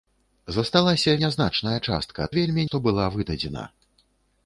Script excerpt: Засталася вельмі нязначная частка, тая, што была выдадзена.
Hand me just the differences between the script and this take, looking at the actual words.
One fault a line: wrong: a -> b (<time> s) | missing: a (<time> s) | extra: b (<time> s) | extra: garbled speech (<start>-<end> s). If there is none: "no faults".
missing: вельмі (1.1 s)
wrong: тая -> вельмі (2.4 s)